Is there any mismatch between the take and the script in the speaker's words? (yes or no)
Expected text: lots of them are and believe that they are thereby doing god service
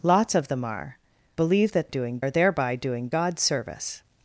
yes